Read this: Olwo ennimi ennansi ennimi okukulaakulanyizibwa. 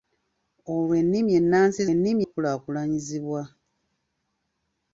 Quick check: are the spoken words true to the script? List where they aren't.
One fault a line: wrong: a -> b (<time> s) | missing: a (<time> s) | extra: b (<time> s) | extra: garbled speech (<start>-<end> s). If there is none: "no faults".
no faults